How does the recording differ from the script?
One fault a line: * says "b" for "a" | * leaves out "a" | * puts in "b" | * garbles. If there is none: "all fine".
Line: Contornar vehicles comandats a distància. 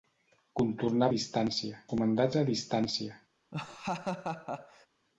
* says "distància" for "vehicles"